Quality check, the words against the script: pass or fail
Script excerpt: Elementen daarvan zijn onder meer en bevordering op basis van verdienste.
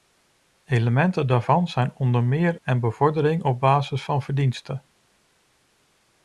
pass